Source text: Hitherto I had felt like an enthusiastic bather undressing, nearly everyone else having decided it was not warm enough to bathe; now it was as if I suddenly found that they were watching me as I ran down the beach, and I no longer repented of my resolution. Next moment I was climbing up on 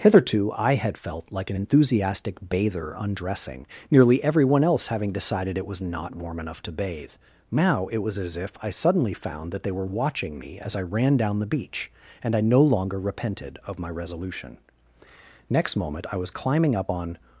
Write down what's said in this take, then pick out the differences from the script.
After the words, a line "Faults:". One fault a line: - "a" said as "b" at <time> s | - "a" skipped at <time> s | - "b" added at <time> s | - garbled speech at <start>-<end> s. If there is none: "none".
Hitherto I had felt like an enthusiastic bather undressing, nearly everyone else having decided it was not warm enough to bathe; now it was as if I suddenly found that they were watching me as I ran down the beach, and I no longer repented of my resolution. Next moment I was climbing up on
Faults:
none